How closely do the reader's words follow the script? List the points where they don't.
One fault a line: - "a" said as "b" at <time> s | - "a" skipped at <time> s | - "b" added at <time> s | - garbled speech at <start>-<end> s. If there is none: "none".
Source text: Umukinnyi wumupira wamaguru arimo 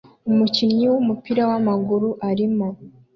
none